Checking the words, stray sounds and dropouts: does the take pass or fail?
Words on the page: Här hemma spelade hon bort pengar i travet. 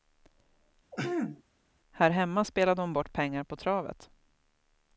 fail